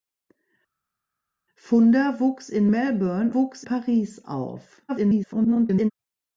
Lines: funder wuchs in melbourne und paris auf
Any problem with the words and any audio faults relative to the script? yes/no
yes